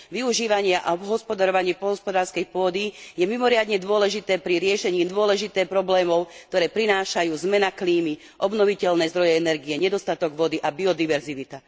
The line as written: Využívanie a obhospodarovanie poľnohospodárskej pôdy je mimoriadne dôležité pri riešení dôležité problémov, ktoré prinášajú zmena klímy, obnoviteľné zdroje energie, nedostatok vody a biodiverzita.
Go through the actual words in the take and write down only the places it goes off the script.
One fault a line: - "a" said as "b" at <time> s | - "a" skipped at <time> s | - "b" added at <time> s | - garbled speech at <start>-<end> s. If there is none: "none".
none